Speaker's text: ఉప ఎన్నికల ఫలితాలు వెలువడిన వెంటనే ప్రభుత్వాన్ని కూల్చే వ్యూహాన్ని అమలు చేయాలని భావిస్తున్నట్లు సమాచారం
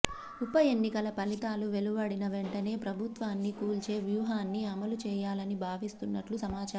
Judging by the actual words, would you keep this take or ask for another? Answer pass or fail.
pass